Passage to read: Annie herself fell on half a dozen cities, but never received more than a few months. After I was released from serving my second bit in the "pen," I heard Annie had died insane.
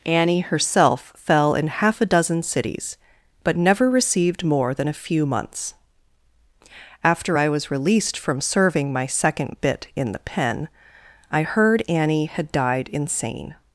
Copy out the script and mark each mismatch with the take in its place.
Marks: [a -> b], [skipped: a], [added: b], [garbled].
Annie herself fell [on -> in] half a dozen cities, but never received more than a few months. After I was released from serving my second bit in the "pen," I heard Annie had died insane.